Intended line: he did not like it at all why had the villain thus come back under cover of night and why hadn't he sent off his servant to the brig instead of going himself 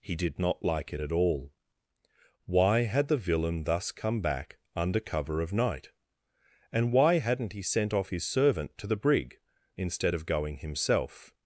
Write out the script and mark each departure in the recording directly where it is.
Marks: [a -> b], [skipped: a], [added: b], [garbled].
he did not like it at all why had the villain thus come back under cover of night and why hadn't he sent off his servant to the brig instead of going himself